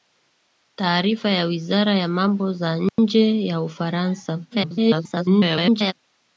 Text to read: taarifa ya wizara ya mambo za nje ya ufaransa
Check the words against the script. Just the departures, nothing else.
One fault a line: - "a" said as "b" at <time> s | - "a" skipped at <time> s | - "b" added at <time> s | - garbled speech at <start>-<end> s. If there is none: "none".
- garbled speech at 4.5-5.9 s